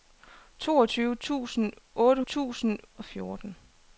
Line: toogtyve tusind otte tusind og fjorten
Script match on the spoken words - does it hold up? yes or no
yes